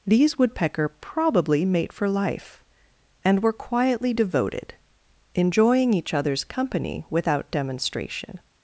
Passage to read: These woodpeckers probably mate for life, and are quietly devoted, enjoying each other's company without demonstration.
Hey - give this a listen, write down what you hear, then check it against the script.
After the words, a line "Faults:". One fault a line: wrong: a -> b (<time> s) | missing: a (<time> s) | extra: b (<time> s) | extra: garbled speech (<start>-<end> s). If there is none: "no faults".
These woodpecker probably mate for life, and were quietly devoted, enjoying each other's company without demonstration.
Faults:
wrong: woodpeckers -> woodpecker (0.4 s)
wrong: are -> were (3.4 s)